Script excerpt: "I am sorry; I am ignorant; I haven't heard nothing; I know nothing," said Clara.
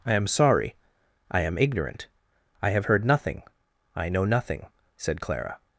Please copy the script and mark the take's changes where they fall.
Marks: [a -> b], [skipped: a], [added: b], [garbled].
"I am sorry; I am ignorant; I [haven't -> have] heard nothing; I know nothing," said Clara.